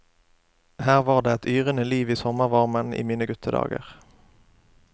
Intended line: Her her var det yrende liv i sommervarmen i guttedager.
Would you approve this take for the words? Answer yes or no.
no